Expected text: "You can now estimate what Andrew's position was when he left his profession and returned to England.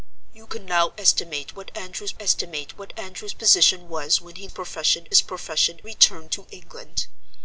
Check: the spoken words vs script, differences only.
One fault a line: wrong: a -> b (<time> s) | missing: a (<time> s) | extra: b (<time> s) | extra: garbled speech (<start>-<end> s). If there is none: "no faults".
extra: estimate what Andrew's (2.2 s)
wrong: left -> profession (4.5 s)
missing: and (5.8 s)